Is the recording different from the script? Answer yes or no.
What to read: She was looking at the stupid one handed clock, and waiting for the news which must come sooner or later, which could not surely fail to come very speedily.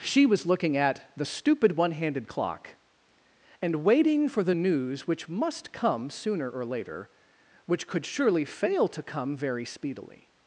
yes